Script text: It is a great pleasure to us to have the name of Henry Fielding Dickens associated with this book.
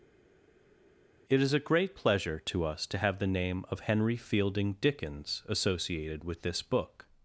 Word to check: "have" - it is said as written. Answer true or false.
true